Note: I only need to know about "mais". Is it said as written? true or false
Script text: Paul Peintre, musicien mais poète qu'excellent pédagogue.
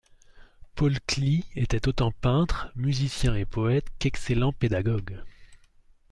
false